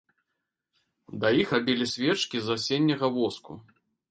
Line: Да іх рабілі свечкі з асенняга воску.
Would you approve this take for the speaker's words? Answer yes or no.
yes